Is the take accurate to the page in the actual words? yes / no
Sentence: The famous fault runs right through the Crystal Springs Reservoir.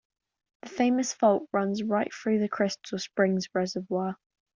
yes